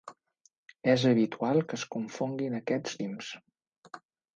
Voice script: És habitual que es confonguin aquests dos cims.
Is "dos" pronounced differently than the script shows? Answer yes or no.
yes